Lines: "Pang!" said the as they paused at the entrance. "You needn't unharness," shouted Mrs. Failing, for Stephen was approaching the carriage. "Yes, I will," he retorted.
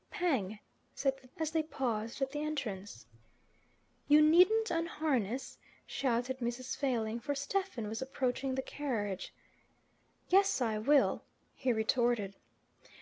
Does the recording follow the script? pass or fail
pass